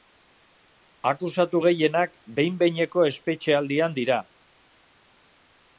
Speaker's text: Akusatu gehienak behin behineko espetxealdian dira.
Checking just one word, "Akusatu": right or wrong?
right